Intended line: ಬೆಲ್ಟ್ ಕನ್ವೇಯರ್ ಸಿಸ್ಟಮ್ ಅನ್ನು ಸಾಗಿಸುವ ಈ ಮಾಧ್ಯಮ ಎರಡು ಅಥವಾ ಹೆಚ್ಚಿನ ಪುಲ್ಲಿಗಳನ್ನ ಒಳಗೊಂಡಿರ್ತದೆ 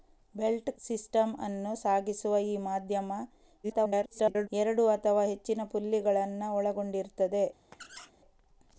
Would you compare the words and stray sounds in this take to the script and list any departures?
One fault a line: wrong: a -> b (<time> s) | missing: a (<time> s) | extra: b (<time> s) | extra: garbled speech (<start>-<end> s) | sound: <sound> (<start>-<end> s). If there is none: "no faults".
missing: ಕನ್ವೇಯರ್ (0.7 s)
extra: garbled speech (3.6-4.5 s)
sound: squeak (7.7-8.1 s)